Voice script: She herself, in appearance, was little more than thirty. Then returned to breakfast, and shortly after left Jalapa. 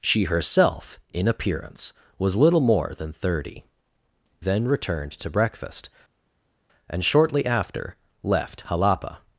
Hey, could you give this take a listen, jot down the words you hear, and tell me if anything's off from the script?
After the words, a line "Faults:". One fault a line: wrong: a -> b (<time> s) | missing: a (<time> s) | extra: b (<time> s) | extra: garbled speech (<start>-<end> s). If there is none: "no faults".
She herself, in appearance, was little more than thirty. Then returned to breakfast, and shortly after left Jalapa.
Faults:
no faults